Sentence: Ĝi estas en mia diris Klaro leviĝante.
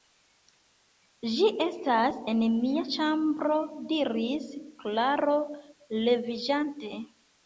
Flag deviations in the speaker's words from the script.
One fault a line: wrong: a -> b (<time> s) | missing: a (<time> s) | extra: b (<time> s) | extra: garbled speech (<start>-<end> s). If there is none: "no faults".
extra: ĉambro (2.9 s)